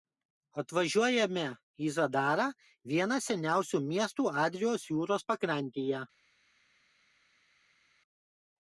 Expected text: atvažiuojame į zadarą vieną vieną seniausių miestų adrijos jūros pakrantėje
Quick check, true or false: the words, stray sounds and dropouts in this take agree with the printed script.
false